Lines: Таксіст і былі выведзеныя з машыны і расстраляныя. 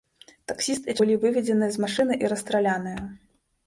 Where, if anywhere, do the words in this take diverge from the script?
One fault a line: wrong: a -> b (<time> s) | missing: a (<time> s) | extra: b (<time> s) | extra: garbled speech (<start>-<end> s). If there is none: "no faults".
no faults